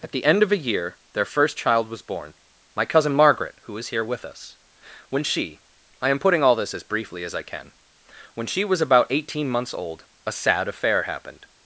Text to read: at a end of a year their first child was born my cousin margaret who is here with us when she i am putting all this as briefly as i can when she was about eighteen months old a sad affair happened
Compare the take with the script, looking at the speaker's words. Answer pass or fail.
fail